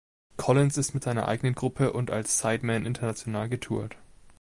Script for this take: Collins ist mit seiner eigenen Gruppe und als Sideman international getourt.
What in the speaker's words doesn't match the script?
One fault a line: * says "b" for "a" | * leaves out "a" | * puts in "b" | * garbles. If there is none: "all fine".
all fine